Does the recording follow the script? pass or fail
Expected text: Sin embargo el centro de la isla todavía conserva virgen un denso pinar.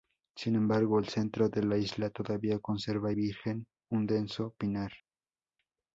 pass